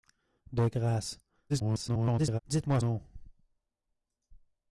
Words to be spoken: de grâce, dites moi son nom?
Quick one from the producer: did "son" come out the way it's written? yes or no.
no